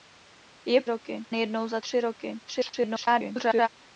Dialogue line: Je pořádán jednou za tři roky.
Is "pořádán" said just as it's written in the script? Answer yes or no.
no